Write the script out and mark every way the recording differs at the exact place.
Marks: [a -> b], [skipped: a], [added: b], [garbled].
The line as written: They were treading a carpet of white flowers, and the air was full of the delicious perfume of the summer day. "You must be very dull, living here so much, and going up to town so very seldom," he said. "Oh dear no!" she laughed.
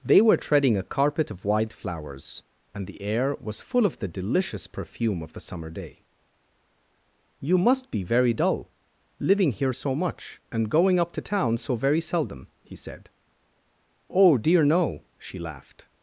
They were treading a carpet of white flowers, and the air was full of the delicious perfume of the summer day. "You must be very dull, living here so much, and going up to town so very seldom," he said. "Oh dear no!" she laughed.